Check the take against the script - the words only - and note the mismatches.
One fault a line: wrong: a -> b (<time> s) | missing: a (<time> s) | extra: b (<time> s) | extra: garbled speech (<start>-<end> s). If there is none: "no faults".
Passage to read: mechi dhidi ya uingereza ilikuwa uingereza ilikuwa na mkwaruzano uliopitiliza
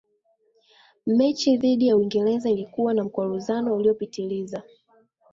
missing: uingereza ilikuwa (2.9 s)